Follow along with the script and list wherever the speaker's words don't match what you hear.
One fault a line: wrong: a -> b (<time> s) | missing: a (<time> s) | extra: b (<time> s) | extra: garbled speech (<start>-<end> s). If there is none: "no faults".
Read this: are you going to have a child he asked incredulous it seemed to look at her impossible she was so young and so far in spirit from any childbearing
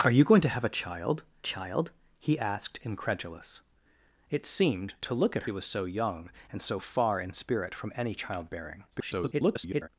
extra: child (1.4 s)
missing: her impossible she (5.4 s)
extra: garbled speech (8.9-9.9 s)